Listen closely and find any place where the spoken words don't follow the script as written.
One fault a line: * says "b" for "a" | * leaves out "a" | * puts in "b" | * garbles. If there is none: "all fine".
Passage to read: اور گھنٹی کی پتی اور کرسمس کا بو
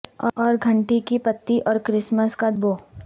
all fine